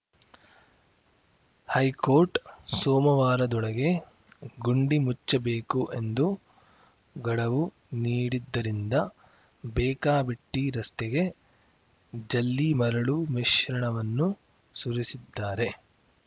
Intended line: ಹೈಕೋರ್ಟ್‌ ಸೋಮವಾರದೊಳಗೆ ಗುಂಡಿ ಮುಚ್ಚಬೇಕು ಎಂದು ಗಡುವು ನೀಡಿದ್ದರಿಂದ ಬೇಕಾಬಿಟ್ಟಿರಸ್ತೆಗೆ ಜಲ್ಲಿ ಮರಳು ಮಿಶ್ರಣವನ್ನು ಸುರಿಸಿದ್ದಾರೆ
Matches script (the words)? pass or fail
pass